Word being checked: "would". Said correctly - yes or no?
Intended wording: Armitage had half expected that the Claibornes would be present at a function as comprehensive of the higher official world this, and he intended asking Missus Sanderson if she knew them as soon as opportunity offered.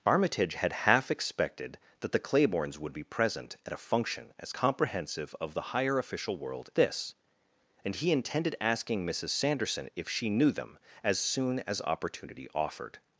yes